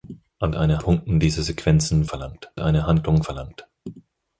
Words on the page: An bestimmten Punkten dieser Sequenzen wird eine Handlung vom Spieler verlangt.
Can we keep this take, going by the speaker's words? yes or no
no